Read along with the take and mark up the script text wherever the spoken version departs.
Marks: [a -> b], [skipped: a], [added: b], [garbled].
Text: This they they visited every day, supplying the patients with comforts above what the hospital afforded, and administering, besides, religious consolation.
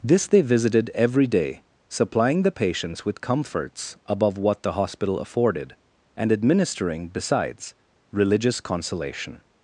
This they [skipped: they] visited every day, supplying the patients with comforts above what the hospital afforded, and administering, besides, religious consolation.